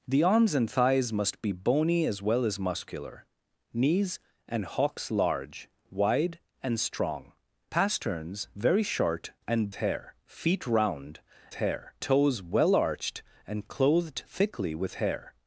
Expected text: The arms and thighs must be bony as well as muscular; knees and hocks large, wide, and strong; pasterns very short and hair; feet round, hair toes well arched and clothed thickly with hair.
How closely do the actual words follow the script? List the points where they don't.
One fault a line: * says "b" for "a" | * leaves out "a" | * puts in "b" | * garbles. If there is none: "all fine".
all fine